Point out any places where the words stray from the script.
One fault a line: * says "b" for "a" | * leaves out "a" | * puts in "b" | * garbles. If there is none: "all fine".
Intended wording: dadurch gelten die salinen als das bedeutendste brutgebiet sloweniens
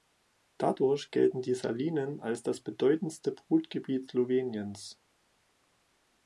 all fine